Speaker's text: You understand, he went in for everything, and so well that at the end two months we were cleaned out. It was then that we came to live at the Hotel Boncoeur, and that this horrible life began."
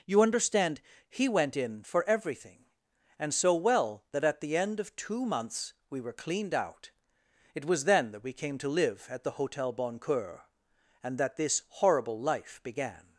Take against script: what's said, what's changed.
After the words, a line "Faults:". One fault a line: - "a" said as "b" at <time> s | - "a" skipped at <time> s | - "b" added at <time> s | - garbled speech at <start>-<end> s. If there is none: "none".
You understand, he went in for everything, and so well that at the end of two months we were cleaned out. It was then that we came to live at the Hotel Boncoeur, and that this horrible life began."
Faults:
- "of" added at 4.8 s